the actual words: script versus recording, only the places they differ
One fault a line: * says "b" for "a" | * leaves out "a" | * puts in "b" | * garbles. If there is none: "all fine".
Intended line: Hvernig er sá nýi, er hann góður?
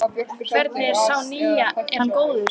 all fine